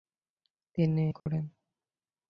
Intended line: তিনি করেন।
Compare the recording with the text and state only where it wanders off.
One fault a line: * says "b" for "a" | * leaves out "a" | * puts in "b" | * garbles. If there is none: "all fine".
all fine